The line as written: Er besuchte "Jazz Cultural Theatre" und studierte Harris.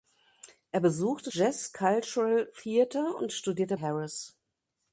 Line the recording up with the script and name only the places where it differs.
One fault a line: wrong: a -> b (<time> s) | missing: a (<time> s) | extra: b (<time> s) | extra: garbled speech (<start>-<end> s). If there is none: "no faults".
no faults